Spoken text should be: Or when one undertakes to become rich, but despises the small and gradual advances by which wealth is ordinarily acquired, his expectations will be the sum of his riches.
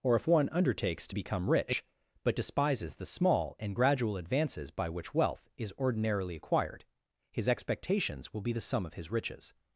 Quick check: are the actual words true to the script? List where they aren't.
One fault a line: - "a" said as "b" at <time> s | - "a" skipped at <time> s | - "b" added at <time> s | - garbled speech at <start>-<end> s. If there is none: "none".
- "when" said as "if" at 0.1 s